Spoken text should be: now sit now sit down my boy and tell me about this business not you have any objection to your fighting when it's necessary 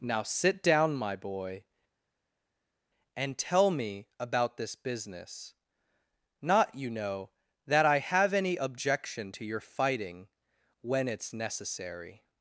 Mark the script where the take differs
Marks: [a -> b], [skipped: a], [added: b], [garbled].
now sit [skipped: now sit] down my boy and tell me about this business not you [added: know that i] have any objection to your fighting when it's necessary